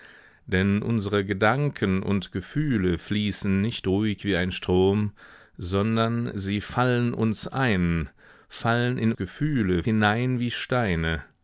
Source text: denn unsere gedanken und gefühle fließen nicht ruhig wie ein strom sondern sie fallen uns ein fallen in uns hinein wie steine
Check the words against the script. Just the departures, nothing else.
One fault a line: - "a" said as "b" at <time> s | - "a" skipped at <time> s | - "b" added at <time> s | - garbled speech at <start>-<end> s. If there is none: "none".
- "uns" said as "gefühle" at 9.2 s